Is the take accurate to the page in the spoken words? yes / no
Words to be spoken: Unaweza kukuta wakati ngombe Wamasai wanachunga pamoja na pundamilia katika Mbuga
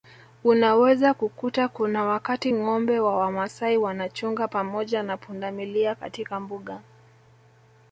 no